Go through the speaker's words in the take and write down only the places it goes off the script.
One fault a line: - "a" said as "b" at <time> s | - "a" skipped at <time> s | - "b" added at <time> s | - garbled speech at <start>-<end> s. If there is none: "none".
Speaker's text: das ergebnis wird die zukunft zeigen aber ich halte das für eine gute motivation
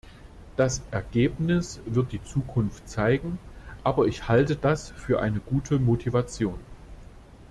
none